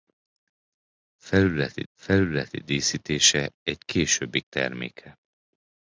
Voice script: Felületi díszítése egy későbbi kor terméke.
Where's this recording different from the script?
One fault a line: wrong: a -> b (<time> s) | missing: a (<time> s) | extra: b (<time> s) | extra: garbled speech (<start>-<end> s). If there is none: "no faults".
extra: felületi (1.9 s)
missing: kor (4.4 s)